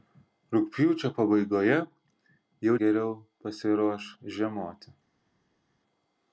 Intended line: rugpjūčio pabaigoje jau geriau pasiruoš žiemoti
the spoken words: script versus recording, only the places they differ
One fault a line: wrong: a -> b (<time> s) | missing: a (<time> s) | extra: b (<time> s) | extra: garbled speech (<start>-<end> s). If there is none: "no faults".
no faults